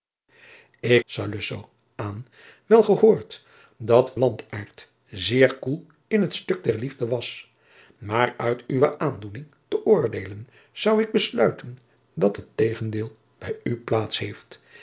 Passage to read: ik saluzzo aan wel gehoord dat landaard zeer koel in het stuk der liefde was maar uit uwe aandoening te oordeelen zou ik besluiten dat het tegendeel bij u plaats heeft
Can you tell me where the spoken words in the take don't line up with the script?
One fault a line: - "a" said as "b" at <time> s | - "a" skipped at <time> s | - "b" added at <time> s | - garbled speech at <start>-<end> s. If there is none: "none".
none